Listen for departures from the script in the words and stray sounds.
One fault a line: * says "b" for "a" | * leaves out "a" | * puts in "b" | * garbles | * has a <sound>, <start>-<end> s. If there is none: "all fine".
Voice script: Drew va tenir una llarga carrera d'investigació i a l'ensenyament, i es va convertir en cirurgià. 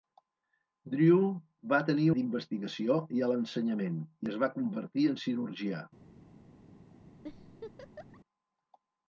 * leaves out "una llarga carrera"
* has a laugh, 7.2-8.2 s